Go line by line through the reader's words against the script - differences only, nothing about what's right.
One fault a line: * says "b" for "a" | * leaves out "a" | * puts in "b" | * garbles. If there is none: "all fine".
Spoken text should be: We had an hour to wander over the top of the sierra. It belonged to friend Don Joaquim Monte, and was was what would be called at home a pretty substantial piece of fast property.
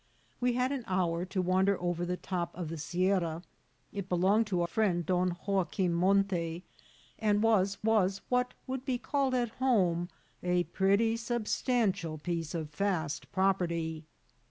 all fine